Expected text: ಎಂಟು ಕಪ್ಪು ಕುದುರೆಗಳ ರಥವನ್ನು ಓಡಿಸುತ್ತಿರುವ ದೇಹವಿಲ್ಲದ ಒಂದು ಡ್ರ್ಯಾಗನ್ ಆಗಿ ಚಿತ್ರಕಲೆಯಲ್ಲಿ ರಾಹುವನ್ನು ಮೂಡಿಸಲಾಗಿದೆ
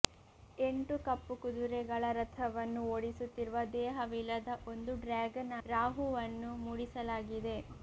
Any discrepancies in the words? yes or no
yes